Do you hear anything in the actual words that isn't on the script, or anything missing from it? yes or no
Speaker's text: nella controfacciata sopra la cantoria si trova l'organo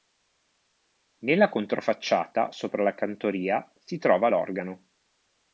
no